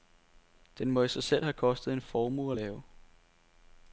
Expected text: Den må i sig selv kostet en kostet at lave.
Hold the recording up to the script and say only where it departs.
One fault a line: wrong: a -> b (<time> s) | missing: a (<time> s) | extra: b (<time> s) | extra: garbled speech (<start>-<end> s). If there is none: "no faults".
extra: have (1.4 s)
wrong: kostet -> formue (2.0 s)